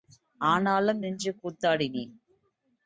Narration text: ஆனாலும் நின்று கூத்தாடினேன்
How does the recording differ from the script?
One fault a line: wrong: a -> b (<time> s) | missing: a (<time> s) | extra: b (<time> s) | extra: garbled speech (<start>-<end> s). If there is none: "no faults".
no faults